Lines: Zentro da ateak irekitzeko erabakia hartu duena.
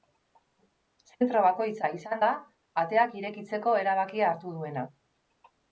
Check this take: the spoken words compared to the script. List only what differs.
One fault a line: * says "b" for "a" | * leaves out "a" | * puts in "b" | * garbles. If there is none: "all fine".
* puts in "bakoitza izan"